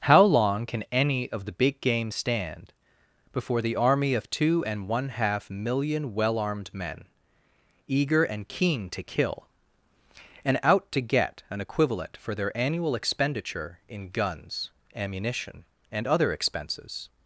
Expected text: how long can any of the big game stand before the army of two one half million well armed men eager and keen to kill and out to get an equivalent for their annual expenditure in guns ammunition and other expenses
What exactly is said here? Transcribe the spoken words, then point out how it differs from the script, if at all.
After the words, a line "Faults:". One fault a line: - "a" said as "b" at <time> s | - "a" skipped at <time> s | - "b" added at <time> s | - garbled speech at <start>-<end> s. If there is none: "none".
how long can any of the big game stand before the army of two and one half million well armed men eager and keen to kill and out to get an equivalent for their annual expenditure in guns ammunition and other expenses
Faults:
- "and" added at 4.7 s